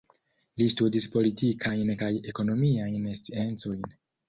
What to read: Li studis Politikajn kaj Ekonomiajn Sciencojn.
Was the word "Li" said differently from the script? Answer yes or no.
no